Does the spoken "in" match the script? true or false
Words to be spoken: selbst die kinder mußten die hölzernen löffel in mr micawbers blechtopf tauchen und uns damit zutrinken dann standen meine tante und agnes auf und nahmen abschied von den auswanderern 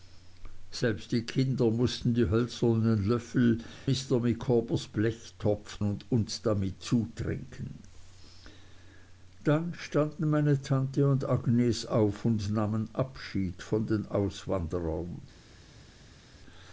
false